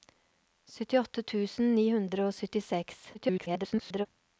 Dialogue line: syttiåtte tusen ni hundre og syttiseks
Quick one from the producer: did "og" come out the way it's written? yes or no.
yes